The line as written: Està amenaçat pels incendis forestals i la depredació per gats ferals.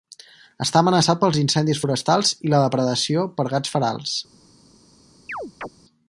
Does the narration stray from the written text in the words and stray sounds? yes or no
yes